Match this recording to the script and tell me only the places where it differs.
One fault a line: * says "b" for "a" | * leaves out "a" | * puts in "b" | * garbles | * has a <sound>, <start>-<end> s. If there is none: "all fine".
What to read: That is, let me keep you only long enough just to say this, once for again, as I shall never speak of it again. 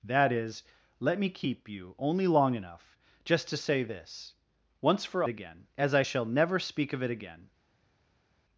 all fine